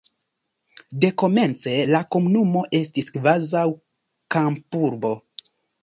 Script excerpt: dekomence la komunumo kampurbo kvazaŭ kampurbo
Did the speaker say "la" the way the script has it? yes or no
yes